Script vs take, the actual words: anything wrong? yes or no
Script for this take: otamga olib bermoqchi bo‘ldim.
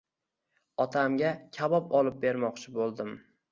yes